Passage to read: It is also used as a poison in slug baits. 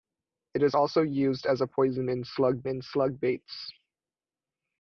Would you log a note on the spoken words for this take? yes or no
yes